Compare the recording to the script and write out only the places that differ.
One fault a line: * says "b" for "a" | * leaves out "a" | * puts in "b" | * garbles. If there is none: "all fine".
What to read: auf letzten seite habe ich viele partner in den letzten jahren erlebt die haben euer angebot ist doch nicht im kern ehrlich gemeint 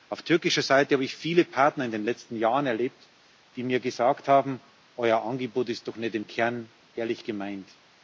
* says "türkischer" for "letzten"
* puts in "mir gesagt"